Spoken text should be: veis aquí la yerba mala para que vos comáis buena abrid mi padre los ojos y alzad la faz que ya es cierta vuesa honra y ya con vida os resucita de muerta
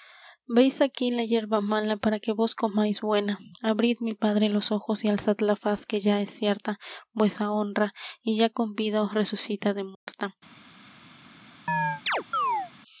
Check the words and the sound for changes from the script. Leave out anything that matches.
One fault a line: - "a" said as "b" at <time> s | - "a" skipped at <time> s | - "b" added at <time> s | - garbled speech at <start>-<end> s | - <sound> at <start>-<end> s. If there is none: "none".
- dropout at 9.9-10.1 s
- chirp at 11.7-12.7 s